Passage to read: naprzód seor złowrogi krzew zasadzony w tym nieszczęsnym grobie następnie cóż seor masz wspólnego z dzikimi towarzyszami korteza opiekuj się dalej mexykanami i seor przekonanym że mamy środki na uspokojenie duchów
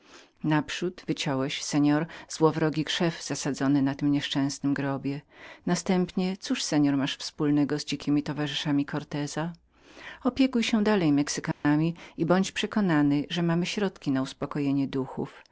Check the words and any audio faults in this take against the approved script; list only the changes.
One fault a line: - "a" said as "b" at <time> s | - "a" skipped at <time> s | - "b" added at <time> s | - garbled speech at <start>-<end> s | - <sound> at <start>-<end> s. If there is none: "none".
- "wyciąłeś" added at 1.1 s
- "w" said as "na" at 3.8 s
- dropout at 11.5-11.6 s
- "seor" said as "bądź" at 12.3 s